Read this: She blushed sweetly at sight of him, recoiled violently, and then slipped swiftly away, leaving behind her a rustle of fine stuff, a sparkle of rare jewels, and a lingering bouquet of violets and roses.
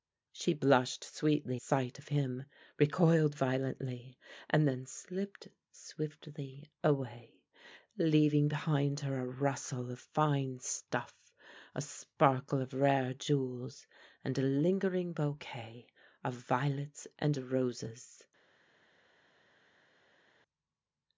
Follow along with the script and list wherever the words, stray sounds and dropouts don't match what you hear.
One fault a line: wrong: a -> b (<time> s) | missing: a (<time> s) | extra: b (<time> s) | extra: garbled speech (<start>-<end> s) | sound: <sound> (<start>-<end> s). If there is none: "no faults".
missing: at (1.6 s)